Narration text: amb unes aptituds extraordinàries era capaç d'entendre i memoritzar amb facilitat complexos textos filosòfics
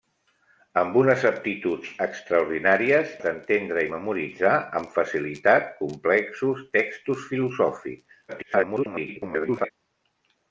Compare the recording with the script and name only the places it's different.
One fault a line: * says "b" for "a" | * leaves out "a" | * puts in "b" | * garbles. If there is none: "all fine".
* leaves out "era capaç"
* garbles